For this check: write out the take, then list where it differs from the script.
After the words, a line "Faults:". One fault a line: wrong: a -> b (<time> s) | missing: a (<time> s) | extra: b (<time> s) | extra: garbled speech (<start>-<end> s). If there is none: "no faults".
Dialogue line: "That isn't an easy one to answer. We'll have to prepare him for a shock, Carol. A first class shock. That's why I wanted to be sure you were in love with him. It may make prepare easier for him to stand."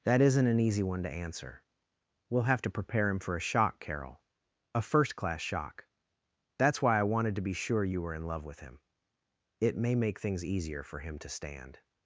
"That isn't an easy one to answer. We'll have to prepare him for a shock, Carol. A first class shock. That's why I wanted to be sure you were in love with him. It may make things easier for him to stand."
Faults:
wrong: prepare -> things (10.2 s)